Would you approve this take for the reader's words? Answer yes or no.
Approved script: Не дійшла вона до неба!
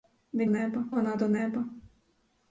no